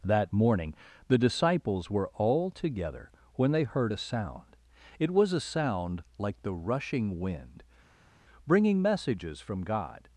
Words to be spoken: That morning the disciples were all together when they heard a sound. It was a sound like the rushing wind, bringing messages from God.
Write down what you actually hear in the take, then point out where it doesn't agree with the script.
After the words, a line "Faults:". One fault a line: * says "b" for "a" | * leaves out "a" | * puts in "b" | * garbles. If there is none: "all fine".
That morning the disciples were all together when they heard a sound. It was a sound like the rushing wind, bringing messages from God.
Faults:
all fine